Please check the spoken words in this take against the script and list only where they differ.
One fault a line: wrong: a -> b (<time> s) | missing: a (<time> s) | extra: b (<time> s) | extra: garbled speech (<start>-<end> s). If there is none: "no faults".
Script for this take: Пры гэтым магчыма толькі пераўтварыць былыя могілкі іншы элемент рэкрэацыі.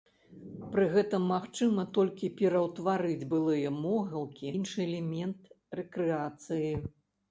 no faults